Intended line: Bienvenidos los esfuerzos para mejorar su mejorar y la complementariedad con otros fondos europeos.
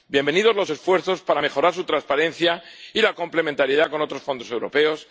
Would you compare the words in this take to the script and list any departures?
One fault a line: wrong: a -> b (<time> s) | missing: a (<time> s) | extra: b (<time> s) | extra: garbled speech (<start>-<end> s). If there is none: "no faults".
wrong: mejorar -> transparencia (1.8 s)